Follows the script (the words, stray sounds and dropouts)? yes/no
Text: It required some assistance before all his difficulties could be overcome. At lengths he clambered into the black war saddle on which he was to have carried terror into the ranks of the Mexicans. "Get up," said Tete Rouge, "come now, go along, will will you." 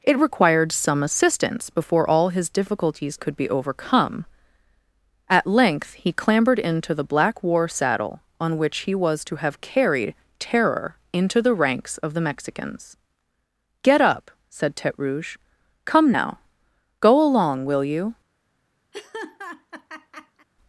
no